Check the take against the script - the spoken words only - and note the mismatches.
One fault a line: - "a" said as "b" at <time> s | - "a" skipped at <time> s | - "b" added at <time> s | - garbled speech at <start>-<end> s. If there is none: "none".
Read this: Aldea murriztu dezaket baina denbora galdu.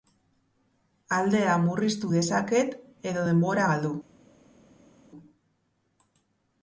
- "baina" said as "edo" at 3.1 s